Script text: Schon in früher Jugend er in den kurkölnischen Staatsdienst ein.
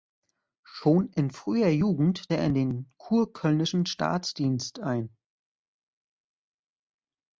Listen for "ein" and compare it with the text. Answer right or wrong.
right